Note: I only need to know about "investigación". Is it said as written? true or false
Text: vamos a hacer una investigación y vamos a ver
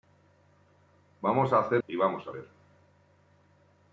false